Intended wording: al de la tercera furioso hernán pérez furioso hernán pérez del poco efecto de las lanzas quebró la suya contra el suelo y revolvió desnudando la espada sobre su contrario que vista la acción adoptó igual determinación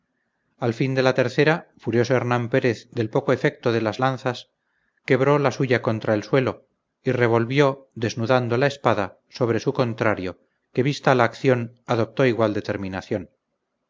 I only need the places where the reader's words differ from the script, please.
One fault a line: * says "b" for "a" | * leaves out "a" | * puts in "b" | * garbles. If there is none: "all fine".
* puts in "fin"
* leaves out "furioso hernán pérez"